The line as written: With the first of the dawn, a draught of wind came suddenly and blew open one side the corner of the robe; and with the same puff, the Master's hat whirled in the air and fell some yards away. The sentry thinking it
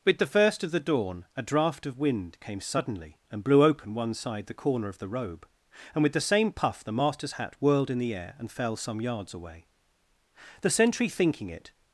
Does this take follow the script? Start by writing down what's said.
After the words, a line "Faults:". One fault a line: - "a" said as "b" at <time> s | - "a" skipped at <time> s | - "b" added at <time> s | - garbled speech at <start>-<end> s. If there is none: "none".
With the first of the dawn, a draught of wind came suddenly and blew open one side the corner of the robe; and with the same puff, the Master's hat whirled in the air and fell some yards away. The sentry thinking it
Faults:
none